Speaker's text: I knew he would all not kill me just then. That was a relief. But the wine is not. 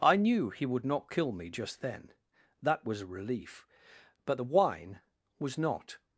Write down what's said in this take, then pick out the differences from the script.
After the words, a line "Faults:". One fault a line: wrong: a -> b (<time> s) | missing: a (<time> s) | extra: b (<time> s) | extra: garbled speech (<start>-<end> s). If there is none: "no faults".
I knew he would not kill me just then. That was a relief. But the wine was not.
Faults:
missing: all (0.8 s)
wrong: is -> was (5.4 s)